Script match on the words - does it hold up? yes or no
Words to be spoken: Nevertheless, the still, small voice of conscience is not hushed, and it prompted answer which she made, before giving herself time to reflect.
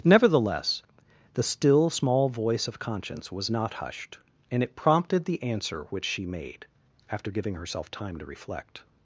no